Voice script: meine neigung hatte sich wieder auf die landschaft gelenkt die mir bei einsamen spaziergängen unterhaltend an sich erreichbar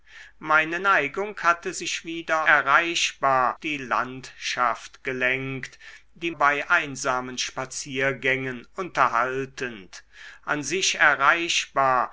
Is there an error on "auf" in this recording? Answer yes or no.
yes